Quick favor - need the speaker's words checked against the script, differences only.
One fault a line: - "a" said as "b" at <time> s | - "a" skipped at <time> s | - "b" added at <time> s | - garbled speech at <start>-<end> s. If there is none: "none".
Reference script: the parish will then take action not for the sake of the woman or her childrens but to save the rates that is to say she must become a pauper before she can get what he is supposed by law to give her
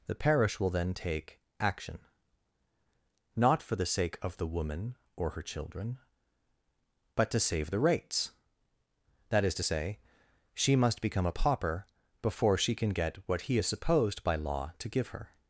- "childrens" said as "children" at 5.4 s